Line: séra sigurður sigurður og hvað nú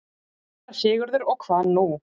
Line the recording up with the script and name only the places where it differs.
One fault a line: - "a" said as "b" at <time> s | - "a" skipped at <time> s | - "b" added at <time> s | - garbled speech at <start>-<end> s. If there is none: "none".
- "sigurður" skipped at 1.3 s